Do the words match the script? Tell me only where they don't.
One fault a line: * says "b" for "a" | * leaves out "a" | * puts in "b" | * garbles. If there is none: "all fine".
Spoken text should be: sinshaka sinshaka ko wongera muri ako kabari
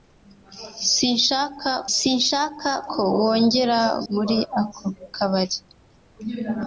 all fine